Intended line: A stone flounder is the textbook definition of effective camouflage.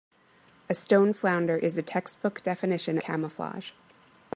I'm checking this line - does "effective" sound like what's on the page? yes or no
no